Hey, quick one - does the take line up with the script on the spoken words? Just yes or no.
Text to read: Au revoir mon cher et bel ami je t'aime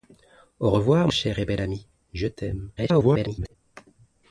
no